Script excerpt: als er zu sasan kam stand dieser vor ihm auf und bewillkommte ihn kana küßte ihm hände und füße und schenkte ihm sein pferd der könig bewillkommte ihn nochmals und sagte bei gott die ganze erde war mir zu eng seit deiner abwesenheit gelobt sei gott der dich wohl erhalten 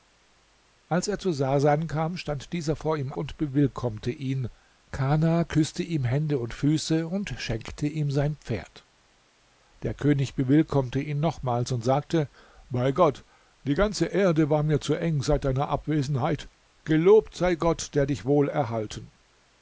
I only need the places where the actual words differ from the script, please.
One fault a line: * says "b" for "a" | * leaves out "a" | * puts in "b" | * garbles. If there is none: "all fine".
* leaves out "auf"